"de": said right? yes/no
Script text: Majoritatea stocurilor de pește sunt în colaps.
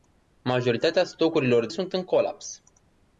no